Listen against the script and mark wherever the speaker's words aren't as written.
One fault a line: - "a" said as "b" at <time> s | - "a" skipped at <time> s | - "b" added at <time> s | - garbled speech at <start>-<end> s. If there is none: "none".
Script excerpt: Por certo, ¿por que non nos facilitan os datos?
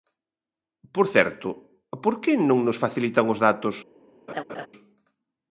none